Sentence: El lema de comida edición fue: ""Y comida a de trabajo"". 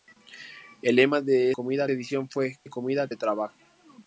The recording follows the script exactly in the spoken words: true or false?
true